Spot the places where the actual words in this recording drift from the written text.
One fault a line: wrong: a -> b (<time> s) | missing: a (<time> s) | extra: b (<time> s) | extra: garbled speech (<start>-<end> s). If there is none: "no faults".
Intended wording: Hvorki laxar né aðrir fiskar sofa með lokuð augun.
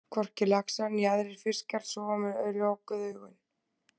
no faults